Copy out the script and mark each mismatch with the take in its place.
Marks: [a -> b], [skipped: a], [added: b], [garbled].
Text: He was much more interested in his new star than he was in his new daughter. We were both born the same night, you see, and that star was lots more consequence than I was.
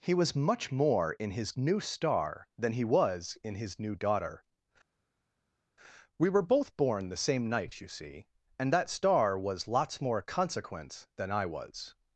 He was much more [skipped: interested] in his new star than he was in his new daughter. We were both born the same night, you see, and that star was lots more consequence than I was.